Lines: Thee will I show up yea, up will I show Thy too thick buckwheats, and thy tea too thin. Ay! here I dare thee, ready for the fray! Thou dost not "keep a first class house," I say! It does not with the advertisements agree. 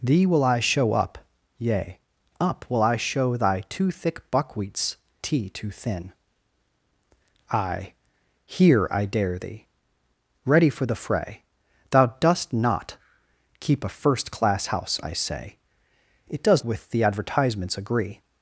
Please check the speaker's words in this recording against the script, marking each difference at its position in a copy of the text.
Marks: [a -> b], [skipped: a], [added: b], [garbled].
Thee will I show up yea, up will I show Thy too thick buckwheats, [skipped: and thy] tea too thin. Ay! here I dare thee, ready for the fray! Thou dost not "keep a first class house," I say! It does [skipped: not] with the advertisements agree.